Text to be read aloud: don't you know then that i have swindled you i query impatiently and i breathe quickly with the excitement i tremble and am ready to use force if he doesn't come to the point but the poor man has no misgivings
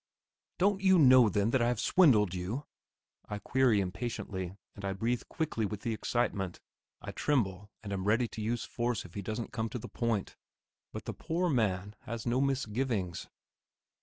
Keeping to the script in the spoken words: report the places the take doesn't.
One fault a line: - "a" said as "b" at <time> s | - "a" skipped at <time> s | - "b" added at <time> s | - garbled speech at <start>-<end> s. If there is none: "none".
none